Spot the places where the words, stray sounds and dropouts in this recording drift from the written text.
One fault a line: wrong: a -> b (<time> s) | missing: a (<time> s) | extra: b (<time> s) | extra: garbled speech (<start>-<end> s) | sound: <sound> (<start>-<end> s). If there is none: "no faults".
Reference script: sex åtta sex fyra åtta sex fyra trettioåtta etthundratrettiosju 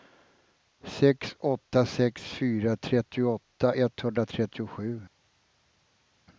missing: åtta sex fyra (2.8 s)